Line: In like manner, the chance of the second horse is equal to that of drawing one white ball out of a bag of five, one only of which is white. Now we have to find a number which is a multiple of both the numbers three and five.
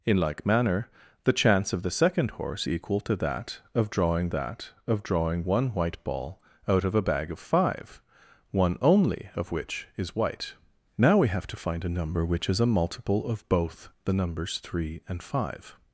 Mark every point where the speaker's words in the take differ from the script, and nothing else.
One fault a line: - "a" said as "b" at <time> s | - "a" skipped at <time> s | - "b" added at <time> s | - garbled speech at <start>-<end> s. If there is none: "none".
- "is" skipped at 2.7 s
- "that of drawing" added at 4.3 s